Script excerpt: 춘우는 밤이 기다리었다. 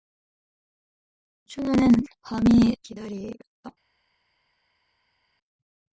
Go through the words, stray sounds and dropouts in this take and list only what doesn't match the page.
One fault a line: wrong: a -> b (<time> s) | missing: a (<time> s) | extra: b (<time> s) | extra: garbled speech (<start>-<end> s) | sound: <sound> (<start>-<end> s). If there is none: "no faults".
no faults